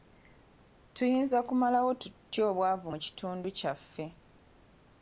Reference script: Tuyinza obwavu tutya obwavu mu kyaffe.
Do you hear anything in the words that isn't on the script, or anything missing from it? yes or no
yes